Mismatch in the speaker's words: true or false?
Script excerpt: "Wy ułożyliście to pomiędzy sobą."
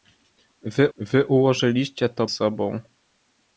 true